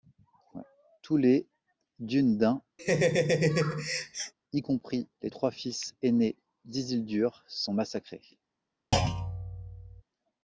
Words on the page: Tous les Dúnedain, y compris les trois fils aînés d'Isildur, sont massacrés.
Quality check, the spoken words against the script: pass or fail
pass